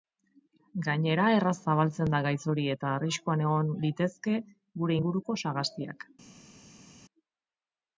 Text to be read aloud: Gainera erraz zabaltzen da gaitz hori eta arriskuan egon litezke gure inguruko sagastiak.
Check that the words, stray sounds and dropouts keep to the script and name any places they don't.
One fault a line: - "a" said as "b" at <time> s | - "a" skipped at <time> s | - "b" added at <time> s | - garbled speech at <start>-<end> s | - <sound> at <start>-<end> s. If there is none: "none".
none